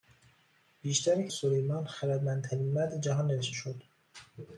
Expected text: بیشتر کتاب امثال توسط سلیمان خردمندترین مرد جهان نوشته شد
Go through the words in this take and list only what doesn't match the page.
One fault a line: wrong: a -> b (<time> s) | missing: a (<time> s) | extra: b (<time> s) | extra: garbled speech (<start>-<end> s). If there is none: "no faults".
missing: کتاب امثال توسط (1.3 s)